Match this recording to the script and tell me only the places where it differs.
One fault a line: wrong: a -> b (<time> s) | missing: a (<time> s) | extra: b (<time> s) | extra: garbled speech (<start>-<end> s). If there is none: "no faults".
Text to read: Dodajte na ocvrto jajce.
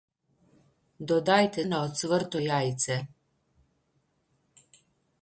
no faults